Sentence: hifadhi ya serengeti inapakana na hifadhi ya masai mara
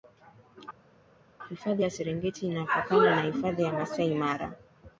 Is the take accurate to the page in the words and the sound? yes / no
yes